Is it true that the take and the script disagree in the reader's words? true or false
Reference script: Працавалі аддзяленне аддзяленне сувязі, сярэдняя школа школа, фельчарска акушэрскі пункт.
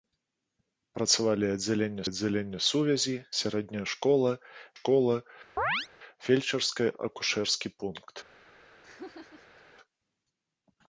false